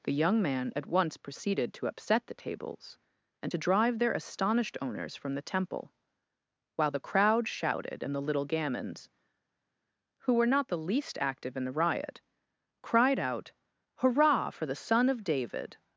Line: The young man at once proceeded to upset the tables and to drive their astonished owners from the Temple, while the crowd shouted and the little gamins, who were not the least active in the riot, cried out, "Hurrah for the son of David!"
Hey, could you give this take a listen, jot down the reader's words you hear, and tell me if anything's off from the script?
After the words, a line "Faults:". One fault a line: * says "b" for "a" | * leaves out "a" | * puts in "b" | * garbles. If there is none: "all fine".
The young man at once proceeded to upset the tables and to drive their astonished owners from the Temple, while the crowd shouted and the little gamins, who were not the least active in the riot, cried out, "Hurrah for the son of David!"
Faults:
all fine